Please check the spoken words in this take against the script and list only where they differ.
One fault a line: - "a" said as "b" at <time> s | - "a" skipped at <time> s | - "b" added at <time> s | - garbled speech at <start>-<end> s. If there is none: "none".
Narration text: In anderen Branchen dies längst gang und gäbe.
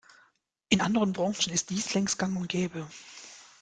- "ist" added at 1.5 s